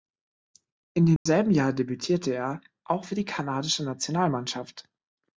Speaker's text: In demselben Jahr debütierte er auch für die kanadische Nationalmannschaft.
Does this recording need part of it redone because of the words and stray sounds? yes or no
yes